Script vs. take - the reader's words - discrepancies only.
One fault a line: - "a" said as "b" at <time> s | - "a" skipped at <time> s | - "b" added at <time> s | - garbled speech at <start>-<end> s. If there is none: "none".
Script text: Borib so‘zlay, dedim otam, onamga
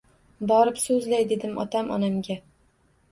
none